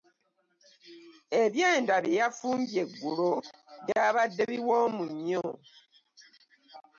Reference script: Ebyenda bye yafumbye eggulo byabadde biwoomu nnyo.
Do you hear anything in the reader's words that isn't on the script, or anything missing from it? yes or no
no